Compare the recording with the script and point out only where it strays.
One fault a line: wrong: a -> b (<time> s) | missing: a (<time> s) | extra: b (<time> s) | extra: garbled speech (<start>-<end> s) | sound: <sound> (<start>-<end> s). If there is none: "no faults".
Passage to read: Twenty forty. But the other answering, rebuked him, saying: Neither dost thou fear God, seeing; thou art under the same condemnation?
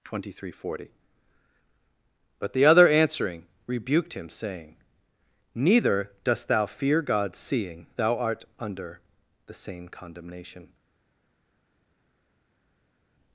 extra: three (0.3 s)